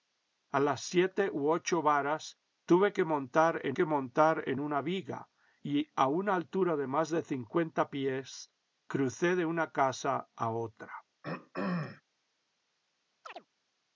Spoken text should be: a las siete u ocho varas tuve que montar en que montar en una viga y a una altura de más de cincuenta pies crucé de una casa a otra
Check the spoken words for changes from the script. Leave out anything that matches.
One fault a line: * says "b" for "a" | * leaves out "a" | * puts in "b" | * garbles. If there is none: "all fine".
all fine